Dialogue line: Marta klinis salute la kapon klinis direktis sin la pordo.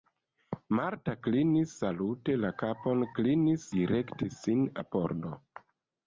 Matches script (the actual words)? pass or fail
pass